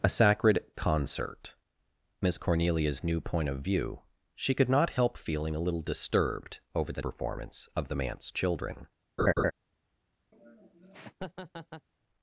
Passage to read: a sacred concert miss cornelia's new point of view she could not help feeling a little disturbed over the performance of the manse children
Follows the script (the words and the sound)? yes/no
no